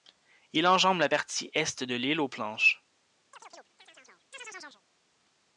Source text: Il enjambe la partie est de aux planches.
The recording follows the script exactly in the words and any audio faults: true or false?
false